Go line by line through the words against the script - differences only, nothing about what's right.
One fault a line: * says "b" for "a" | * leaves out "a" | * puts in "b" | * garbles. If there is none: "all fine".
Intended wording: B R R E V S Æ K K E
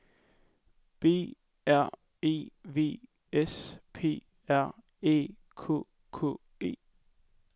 * leaves out "R"
* puts in "P R"